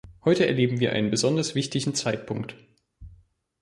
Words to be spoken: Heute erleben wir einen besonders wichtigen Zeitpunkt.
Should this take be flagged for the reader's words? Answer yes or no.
no